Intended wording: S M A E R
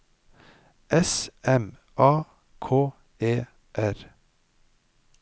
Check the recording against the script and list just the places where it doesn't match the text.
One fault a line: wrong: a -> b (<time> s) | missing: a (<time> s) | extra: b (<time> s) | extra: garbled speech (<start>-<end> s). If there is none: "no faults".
extra: K (2.6 s)